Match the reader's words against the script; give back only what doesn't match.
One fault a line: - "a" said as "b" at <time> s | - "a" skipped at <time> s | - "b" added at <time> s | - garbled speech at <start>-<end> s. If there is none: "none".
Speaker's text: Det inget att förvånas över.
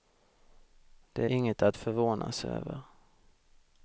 none